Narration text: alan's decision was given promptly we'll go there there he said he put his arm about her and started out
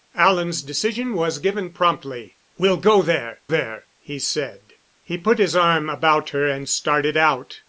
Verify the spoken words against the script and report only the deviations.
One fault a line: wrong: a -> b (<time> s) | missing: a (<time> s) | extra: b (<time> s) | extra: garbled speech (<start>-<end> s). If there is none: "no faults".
no faults